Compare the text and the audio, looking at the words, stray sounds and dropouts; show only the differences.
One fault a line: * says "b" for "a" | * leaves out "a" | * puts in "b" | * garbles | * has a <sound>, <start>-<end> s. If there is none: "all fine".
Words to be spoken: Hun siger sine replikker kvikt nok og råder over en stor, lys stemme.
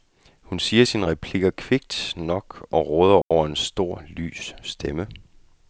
* has a dropout, 3.2-3.3 s